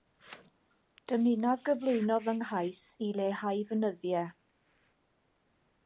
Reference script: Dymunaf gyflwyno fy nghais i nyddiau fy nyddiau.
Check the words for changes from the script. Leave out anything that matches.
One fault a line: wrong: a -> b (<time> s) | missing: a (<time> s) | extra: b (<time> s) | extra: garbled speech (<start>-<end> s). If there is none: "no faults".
wrong: nyddiau -> leihau (3.2 s)